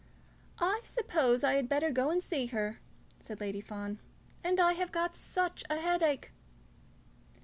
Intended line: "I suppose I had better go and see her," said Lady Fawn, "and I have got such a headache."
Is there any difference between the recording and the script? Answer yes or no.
no